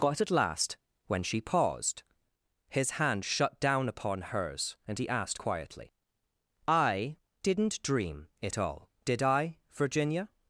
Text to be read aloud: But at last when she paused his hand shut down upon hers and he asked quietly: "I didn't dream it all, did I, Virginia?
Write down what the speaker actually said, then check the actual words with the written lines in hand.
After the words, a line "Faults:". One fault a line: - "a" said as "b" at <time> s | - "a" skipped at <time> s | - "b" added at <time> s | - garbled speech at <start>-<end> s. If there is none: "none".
But at last when she paused his hand shut down upon hers and he asked quietly: "I didn't dream it all, did I, Virginia?
Faults:
none